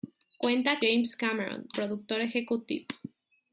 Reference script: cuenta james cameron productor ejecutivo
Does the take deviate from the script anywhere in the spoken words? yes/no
no